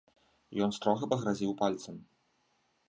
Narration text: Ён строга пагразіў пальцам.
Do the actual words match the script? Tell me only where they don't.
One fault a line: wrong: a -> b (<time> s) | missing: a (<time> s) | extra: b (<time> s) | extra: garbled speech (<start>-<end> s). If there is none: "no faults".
no faults